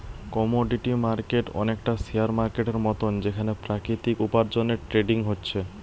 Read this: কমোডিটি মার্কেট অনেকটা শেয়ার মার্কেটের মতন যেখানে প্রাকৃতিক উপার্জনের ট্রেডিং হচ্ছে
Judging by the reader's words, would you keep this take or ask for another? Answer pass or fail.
pass